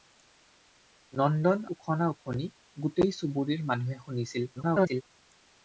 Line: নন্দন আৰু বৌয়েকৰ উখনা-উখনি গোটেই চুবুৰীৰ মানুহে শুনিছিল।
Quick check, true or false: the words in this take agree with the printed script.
false